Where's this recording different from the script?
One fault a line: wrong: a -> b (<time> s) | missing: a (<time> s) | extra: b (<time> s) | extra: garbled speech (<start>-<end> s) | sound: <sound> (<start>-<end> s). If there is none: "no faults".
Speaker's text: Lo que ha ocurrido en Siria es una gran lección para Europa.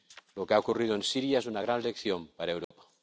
sound: dropout (2.6-2.7 s)